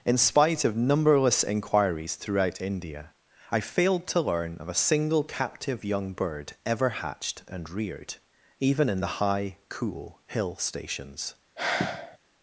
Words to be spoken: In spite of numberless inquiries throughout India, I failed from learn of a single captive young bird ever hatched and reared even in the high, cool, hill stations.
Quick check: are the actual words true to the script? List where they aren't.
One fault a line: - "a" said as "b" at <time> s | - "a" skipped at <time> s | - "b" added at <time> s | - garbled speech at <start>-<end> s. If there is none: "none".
- "from" said as "to" at 4.1 s